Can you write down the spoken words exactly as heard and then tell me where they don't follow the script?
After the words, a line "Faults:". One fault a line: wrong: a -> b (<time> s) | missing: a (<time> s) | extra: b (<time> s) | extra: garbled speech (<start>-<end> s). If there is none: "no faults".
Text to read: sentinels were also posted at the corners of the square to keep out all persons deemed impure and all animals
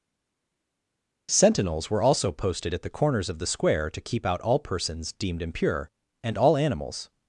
sentinels were also posted at the corners of the square to keep out all persons deemed impure and all animals
Faults:
no faults